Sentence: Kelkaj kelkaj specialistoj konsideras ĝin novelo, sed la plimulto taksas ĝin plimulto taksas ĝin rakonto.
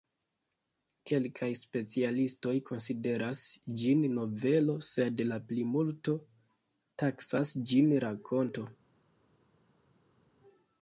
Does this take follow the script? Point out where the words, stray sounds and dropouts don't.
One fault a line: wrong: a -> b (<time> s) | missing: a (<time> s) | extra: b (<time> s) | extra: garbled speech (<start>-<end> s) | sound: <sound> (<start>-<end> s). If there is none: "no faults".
missing: kelkaj (1.5 s)
missing: plimulto taksas ĝin (7.9 s)